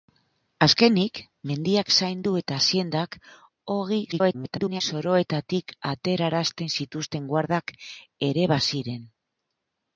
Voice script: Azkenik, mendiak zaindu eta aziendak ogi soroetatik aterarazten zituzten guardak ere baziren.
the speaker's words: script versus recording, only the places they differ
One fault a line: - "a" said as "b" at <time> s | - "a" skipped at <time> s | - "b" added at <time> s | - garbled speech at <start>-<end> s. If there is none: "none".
- garbled speech at 4.1-4.8 s